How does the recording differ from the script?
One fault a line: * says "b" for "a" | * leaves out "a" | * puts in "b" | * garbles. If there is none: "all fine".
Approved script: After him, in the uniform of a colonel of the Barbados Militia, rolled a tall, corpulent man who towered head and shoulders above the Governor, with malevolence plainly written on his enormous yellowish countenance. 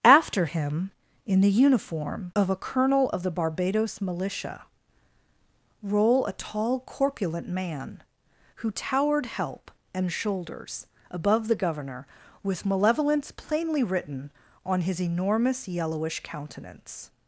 * says "roll" for "rolled"
* says "help" for "head"